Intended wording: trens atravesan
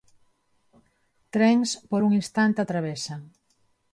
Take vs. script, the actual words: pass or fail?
fail